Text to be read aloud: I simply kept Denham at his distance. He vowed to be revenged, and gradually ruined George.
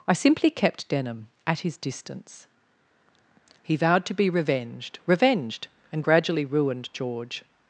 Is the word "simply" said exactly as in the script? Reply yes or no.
yes